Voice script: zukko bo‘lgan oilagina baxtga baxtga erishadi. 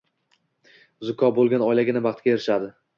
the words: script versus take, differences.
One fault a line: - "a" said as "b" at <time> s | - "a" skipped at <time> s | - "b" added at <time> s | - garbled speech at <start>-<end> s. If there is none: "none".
- "baxtga" skipped at 2.4 s